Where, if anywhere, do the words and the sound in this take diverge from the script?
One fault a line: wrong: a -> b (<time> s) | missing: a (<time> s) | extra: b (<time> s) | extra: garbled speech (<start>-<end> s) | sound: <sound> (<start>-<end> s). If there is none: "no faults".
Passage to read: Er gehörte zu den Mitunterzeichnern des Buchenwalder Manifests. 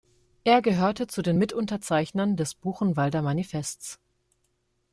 no faults